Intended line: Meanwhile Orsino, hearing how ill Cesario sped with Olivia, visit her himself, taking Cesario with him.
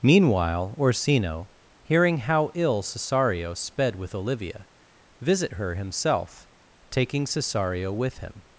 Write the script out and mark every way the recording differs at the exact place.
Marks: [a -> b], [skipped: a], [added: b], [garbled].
Meanwhile Orsino, hearing how ill Cesario sped with Olivia, visit her himself, taking Cesario with him.